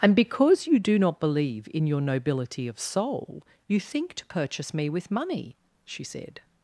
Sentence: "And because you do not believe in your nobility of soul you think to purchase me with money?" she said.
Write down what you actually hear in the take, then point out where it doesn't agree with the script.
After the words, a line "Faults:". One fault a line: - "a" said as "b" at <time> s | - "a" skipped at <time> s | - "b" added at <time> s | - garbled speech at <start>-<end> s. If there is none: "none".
"And because you do not believe in your nobility of soul you think to purchase me with money?" she said.
Faults:
none